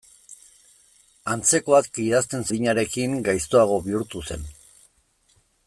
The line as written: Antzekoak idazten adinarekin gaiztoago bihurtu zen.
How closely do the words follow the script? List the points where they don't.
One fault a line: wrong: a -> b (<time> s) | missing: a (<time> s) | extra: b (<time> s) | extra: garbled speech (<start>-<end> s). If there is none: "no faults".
no faults